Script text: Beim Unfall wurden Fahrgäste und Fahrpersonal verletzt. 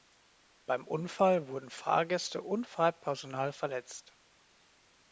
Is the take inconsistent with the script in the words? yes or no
no